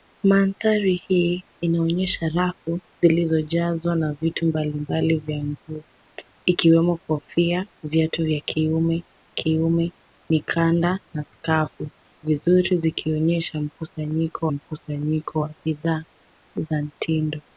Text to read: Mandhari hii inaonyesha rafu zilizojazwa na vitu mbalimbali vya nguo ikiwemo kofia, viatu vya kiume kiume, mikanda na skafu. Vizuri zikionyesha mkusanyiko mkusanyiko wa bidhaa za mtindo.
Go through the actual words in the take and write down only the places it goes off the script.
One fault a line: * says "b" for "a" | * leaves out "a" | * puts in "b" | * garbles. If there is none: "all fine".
all fine